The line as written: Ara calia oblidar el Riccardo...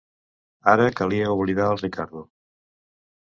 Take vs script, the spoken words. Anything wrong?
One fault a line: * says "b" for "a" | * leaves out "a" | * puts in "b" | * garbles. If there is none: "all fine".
all fine